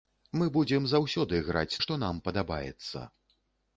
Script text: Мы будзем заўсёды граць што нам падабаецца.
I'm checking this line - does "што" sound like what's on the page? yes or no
yes